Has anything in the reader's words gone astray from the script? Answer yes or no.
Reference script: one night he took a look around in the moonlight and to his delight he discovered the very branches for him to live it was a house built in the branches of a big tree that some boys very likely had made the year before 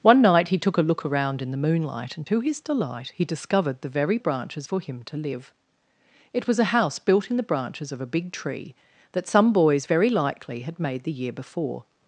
no